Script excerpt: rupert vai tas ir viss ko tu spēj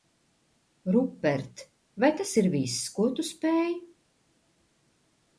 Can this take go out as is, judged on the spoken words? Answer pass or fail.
pass